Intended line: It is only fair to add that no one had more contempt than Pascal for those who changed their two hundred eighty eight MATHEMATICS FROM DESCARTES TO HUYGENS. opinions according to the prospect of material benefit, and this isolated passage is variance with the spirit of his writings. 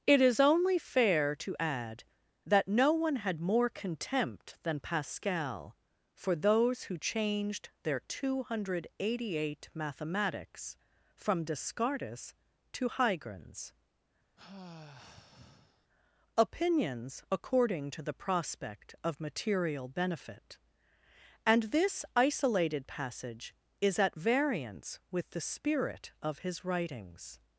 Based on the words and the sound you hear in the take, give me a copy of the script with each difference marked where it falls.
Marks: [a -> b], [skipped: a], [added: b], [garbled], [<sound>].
It is only fair to add that no one had more contempt than Pascal for those who changed their two hundred eighty eight MATHEMATICS FROM DESCARTES TO HUYGENS. [sigh] opinions according to the prospect of material benefit, and this isolated passage is [added: at] variance with the spirit of his writings.